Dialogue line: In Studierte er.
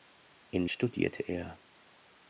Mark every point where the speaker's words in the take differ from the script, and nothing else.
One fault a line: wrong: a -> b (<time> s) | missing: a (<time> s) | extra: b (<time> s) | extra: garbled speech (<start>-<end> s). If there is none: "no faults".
no faults